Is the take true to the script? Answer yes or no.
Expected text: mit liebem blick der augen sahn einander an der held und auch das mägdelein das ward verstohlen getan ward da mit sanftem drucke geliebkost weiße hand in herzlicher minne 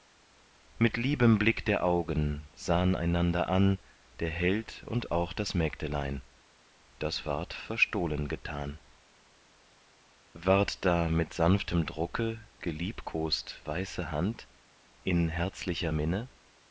yes